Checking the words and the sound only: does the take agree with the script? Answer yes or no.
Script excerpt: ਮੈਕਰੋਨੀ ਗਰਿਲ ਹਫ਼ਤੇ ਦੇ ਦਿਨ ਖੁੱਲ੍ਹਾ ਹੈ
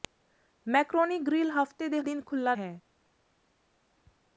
yes